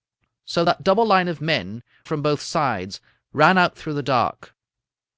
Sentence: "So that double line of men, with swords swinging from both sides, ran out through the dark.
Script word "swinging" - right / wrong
wrong